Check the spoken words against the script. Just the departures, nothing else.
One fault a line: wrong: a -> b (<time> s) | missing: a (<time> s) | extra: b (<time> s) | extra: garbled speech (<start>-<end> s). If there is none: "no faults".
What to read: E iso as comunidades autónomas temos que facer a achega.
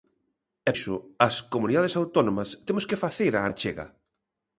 no faults